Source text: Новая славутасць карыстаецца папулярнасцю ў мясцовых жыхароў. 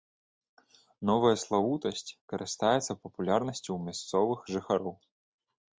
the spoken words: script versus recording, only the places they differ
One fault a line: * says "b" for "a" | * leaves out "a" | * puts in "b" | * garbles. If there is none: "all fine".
all fine